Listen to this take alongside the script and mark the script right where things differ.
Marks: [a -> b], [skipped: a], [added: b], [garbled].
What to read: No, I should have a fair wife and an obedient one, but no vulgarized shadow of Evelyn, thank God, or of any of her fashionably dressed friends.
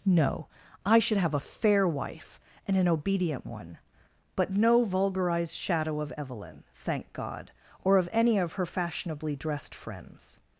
No, I should have a fair wife and an obedient one, but no vulgarized shadow of Evelyn, thank God, or of any of her fashionably dressed friends.